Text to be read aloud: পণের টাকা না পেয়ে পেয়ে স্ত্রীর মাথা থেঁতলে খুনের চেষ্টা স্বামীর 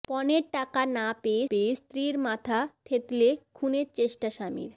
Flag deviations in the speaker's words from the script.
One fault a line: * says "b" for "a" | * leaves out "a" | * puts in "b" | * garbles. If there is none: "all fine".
all fine